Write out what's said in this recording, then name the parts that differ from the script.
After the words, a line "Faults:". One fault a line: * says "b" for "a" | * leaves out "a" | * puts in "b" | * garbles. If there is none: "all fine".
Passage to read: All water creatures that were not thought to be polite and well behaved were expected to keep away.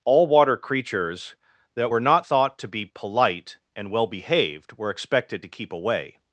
All water creatures that were not thought to be polite and well behaved were expected to keep away.
Faults:
all fine